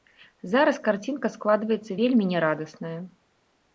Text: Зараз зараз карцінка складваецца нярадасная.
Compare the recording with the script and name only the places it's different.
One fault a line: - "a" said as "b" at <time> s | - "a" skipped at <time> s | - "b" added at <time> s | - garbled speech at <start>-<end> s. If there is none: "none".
- "зараз" skipped at 0.8 s
- "вельмі" added at 2.0 s